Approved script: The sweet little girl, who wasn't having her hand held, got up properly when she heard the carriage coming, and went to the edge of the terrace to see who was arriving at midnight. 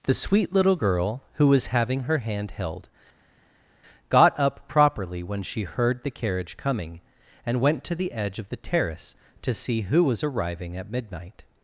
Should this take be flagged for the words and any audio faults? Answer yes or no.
yes